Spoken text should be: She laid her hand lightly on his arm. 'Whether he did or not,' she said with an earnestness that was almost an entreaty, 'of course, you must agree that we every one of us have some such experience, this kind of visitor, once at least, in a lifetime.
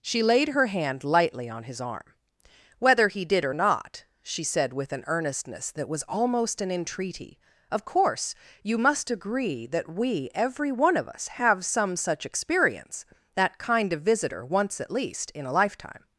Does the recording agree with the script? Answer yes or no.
no